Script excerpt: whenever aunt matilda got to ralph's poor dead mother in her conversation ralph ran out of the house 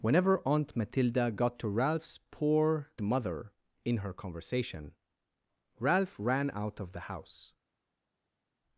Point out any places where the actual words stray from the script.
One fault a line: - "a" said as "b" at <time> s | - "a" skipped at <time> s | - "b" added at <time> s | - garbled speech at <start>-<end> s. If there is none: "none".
- "dead" skipped at 2.9 s